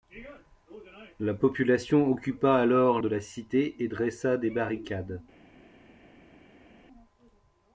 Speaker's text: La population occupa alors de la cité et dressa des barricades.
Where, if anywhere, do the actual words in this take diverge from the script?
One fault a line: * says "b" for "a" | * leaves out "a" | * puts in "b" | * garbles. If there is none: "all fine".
all fine